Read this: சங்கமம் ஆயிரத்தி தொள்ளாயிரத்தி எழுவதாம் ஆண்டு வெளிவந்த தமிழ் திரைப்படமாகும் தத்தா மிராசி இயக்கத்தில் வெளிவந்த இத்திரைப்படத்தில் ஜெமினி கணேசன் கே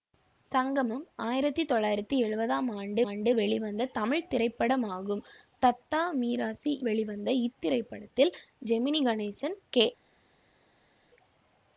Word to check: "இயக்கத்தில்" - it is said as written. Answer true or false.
false